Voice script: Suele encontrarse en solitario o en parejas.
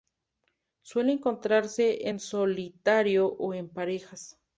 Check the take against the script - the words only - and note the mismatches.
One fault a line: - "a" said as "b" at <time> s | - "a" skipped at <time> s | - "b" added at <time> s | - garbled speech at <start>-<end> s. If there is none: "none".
none